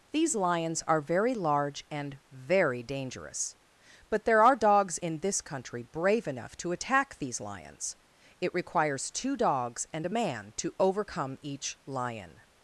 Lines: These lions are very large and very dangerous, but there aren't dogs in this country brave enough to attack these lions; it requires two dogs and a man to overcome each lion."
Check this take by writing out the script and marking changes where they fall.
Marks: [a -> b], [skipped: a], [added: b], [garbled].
These lions are very large and very dangerous, but there [aren't -> are] dogs in this country brave enough to attack these lions; it requires two dogs and a man to overcome each lion."